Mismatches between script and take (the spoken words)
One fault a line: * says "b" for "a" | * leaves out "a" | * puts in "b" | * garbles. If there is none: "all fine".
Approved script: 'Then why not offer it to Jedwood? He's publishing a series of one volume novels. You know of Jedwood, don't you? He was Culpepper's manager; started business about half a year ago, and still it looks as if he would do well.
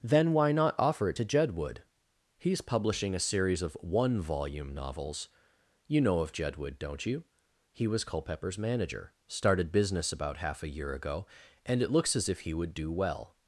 * leaves out "still"